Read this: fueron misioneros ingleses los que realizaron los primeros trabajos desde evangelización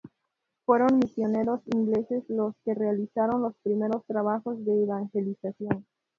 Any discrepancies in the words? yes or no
yes